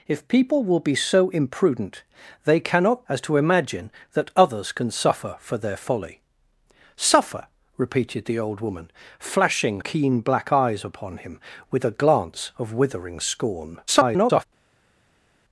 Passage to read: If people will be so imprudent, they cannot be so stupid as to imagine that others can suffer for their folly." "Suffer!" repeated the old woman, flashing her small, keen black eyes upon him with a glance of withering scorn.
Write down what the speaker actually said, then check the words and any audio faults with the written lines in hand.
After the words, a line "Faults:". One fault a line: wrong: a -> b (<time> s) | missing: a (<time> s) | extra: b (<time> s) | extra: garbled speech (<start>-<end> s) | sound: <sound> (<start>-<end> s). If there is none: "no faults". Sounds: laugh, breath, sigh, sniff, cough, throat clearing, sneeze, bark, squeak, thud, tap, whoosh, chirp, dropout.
If people will be so imprudent, they cannot as to imagine that others can suffer for their folly." "Suffer!" repeated the old woman, flashing keen black eyes upon him with a glance of withering scorn. [garbled]
Faults:
missing: be so stupid (3.0 s)
missing: her small (9.8 s)
extra: garbled speech (13.9-14.4 s)